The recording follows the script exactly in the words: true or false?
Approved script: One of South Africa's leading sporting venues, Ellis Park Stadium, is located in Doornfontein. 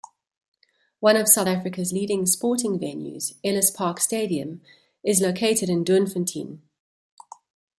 true